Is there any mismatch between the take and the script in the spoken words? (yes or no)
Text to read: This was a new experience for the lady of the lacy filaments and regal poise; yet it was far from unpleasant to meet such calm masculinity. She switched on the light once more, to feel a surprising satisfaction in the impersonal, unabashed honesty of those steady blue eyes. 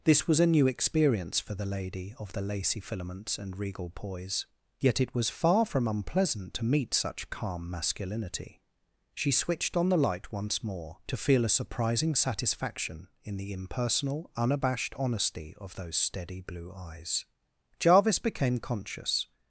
yes